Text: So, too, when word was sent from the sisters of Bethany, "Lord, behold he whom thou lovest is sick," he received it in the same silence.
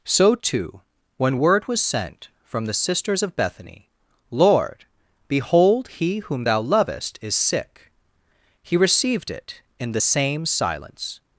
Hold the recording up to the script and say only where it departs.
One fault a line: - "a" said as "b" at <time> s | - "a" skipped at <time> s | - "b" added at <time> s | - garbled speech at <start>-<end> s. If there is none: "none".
none